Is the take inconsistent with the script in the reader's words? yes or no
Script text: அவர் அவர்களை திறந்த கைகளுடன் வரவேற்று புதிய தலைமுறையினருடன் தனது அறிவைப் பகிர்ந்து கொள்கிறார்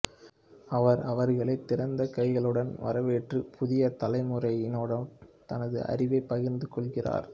no